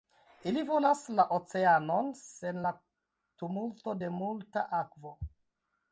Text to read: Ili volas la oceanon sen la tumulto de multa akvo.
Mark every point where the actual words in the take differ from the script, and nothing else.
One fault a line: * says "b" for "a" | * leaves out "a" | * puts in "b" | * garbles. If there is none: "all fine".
all fine